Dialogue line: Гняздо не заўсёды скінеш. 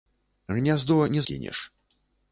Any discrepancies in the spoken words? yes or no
yes